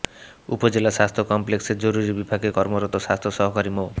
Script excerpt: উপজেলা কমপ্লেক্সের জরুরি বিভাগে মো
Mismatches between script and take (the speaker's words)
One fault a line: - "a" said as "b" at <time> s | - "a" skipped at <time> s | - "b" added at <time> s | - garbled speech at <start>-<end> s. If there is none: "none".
- "স্বাস্থ্য" added at 0.9 s
- "কর্মরত স্বাস্থ্য সহকারী" added at 2.5 s